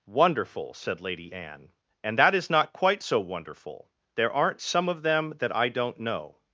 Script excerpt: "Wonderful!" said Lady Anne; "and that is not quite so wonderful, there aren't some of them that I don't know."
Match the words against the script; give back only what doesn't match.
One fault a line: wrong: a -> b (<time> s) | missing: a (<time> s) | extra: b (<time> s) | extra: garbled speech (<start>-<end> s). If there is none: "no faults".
no faults